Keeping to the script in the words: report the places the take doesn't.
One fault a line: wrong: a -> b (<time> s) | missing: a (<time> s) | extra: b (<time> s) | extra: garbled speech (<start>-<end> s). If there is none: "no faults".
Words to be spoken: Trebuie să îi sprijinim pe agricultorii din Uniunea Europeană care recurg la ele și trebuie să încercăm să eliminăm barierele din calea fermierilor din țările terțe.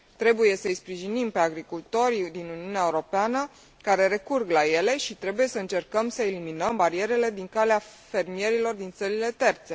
no faults